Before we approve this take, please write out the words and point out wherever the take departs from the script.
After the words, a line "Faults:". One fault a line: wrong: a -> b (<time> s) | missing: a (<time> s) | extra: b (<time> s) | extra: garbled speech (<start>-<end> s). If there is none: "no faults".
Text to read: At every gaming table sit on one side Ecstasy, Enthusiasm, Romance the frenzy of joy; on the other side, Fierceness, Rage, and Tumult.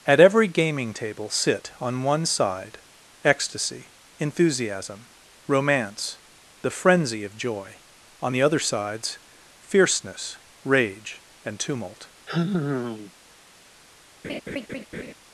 At every gaming table sit on one side Ecstasy, Enthusiasm, Romance the frenzy of joy; on the other sides, Fierceness, Rage, and Tumult.
Faults:
wrong: side -> sides (8.6 s)